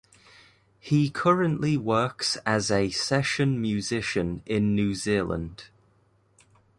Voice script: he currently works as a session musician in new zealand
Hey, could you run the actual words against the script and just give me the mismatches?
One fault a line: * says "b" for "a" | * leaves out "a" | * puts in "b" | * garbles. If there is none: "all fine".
all fine